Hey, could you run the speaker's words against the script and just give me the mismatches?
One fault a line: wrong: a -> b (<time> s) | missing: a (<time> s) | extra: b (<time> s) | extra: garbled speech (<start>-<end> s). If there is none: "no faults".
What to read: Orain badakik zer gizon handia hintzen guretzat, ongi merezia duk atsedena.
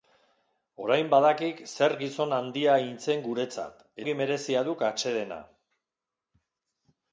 no faults